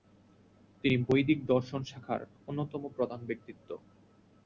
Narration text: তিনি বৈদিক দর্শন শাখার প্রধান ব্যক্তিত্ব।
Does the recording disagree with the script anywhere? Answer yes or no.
yes